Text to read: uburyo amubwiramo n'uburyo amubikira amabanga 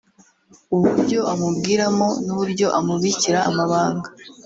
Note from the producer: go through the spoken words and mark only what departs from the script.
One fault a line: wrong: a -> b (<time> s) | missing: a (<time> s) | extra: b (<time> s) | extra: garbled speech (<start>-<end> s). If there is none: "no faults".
no faults